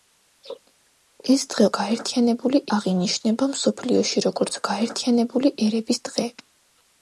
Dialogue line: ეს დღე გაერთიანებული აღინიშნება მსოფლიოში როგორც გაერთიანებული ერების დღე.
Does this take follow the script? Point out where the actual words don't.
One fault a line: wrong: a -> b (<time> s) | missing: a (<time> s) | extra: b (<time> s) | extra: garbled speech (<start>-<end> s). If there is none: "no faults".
no faults